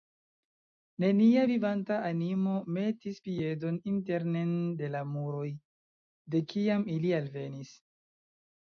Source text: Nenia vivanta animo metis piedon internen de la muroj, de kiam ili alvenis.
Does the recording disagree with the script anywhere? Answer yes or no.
no